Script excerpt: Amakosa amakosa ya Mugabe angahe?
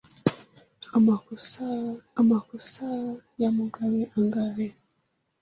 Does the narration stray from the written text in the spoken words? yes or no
no